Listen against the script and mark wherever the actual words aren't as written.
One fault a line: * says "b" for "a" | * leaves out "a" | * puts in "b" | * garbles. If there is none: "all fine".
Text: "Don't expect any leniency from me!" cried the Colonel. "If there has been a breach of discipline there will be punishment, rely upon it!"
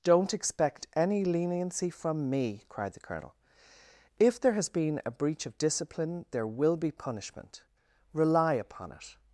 all fine